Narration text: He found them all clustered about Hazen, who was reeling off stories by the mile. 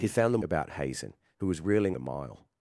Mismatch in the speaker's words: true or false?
true